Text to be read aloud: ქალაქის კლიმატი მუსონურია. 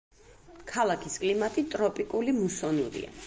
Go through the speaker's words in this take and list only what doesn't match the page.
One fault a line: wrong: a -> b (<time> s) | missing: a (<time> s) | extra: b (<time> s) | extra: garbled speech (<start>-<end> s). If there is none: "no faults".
extra: ტროპიკული (1.8 s)